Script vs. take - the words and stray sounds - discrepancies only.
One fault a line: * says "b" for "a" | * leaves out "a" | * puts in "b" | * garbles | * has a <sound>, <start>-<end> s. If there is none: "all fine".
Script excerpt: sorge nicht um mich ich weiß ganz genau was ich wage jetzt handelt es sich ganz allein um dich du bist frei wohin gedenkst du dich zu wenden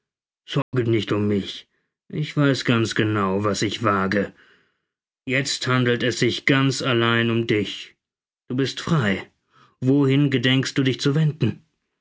* has a dropout, 0.6-0.7 s